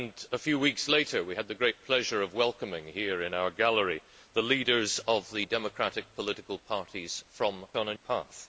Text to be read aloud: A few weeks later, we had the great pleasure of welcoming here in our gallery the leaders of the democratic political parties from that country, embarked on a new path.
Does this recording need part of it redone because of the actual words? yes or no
yes